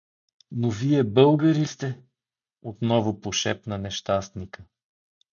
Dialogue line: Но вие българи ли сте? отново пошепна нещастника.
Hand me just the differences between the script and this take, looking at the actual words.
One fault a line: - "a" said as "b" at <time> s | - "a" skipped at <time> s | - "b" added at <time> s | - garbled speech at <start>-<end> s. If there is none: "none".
- "ли" skipped at 1.6 s